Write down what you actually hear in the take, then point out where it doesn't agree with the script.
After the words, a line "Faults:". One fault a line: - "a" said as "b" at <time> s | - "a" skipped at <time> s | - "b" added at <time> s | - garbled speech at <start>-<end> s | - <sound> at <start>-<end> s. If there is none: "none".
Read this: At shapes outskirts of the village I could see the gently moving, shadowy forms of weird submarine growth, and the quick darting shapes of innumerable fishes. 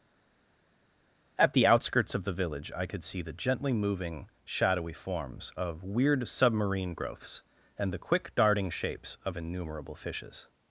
At the outskirts of the village I could see the gently moving, shadowy forms of weird submarine growths, and the quick darting shapes of innumerable fishes.
Faults:
- "shapes" said as "the" at 1.5 s
- "growth" said as "growths" at 6.9 s